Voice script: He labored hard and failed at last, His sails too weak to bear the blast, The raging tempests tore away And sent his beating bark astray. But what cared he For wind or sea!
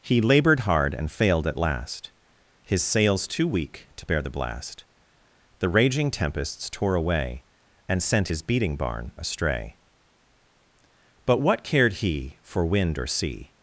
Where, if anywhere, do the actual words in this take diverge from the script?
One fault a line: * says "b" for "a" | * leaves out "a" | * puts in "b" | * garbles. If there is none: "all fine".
* says "barn" for "bark"